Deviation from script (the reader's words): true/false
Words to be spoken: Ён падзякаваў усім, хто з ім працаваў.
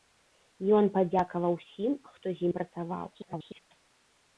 true